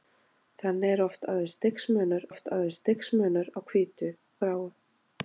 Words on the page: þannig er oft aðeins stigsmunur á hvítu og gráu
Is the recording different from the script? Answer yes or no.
yes